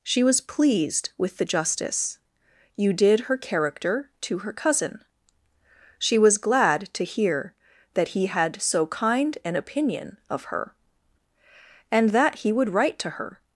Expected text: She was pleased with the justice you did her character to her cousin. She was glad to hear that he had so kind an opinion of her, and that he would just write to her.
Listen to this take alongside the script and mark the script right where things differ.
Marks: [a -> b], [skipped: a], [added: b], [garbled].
She was pleased with the justice you did her character to her cousin. She was glad to hear that he had so kind an opinion of her, and that he would [skipped: just] write to her.